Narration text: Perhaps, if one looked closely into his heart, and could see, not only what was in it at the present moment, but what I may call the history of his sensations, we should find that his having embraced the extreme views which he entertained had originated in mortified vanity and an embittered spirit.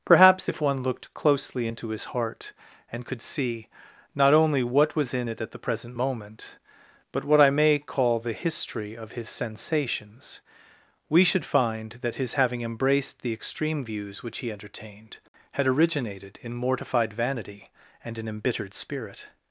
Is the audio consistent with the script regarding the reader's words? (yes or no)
yes